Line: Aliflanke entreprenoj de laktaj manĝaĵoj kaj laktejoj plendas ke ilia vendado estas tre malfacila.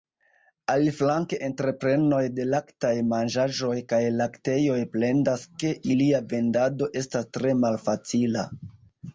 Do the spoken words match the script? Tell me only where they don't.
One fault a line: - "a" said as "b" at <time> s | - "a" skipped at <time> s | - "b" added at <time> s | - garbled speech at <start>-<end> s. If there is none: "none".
none